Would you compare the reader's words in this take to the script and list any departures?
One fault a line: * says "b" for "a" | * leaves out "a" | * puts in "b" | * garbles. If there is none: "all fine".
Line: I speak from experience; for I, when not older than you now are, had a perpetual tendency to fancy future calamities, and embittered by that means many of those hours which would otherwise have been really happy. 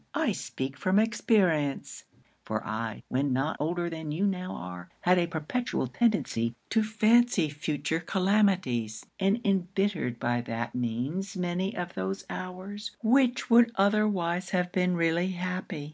all fine